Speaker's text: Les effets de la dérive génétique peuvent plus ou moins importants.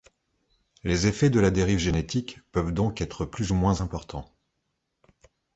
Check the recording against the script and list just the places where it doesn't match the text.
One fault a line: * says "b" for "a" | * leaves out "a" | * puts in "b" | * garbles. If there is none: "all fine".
* puts in "donc être"